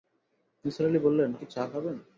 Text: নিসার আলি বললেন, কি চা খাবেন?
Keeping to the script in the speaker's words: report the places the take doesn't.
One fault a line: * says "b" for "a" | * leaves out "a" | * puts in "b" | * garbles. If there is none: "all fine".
all fine